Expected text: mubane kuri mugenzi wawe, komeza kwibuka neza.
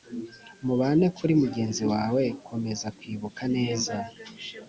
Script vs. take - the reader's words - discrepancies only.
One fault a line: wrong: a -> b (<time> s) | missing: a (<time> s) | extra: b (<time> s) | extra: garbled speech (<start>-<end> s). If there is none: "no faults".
no faults